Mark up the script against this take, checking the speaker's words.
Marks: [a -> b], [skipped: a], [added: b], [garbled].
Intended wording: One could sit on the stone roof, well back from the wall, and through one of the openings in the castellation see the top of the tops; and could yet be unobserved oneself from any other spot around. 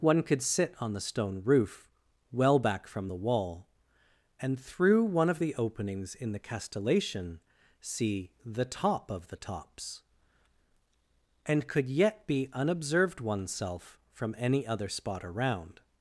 One could sit on the stone roof, well back from the wall, and through one of the openings in the castellation see the top of the tops; and could yet be unobserved oneself from any other spot around.